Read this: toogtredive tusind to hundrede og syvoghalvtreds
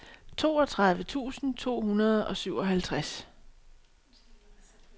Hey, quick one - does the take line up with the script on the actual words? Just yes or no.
yes